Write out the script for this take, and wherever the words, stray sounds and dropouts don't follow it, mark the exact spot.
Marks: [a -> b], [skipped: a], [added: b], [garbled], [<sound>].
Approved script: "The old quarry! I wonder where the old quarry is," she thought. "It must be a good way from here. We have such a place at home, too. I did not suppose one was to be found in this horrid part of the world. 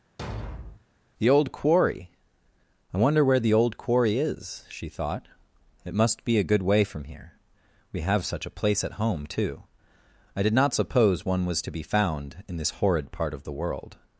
[thud] "The old quarry! I wonder where the old quarry is," she thought. "It must be a good way from here. We have such a place at home, too. I did not suppose one was to be found in this horrid part of the world.